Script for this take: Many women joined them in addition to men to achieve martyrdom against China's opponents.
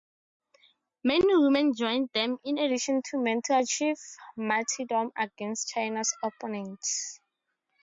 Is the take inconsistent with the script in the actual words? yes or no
no